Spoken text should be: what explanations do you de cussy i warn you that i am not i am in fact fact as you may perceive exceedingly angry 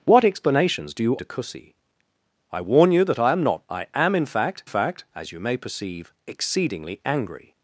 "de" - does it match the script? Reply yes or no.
yes